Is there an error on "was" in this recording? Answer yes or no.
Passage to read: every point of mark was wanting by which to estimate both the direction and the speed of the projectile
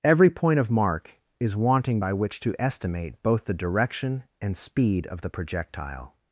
yes